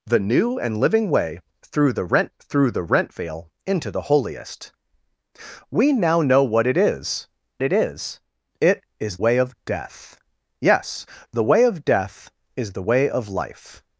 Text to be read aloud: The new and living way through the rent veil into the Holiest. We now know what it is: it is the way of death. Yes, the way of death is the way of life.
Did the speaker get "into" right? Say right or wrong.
right